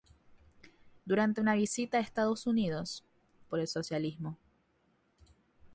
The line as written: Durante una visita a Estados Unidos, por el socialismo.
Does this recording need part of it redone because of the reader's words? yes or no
no